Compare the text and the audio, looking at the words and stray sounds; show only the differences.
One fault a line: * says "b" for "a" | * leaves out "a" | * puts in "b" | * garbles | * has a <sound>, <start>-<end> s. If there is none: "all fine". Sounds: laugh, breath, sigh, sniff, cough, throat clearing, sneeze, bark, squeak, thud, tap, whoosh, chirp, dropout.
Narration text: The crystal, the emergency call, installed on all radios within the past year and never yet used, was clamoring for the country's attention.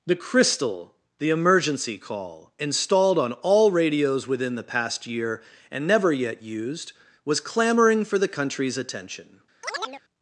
* has a chirp, 9.6-10.0 s